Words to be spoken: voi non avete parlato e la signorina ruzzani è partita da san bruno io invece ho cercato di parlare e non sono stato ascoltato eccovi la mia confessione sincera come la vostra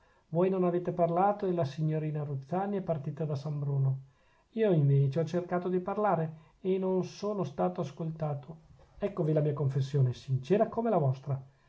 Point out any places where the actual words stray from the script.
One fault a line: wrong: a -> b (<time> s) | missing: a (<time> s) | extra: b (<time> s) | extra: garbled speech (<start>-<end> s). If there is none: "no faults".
no faults